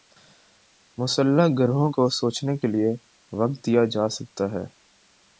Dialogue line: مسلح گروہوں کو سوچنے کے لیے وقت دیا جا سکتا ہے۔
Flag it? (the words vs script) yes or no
no